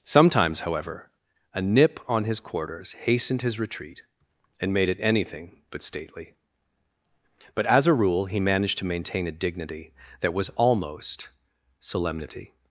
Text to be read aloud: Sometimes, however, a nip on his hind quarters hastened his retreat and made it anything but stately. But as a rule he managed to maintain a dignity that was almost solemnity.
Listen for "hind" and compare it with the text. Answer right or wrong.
wrong